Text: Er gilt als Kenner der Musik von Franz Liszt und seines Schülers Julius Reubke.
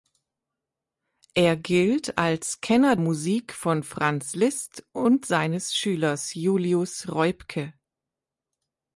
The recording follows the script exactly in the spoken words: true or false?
false